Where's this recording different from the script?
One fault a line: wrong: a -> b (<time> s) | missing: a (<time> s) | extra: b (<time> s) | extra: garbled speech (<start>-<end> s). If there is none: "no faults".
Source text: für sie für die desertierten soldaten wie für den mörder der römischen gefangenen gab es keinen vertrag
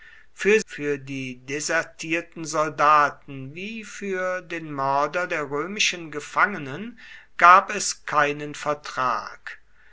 missing: sie (0.6 s)